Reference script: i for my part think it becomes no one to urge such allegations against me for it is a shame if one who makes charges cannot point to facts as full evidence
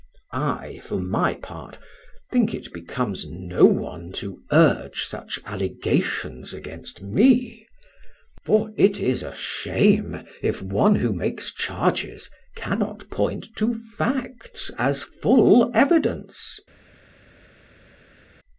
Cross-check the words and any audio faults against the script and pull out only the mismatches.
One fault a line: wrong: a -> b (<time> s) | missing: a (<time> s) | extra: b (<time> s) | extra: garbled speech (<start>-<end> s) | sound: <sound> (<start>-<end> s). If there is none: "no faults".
no faults